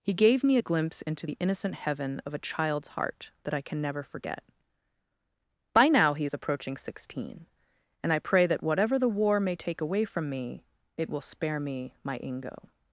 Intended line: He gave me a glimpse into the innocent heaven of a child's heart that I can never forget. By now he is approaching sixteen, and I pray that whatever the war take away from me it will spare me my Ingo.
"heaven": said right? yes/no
yes